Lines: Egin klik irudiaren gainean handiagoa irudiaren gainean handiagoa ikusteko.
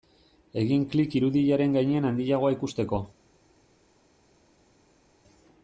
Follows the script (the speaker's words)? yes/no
no